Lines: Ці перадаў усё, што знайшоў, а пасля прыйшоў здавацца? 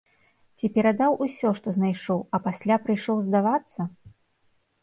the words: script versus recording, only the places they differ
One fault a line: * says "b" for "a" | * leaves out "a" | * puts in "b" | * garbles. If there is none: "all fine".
all fine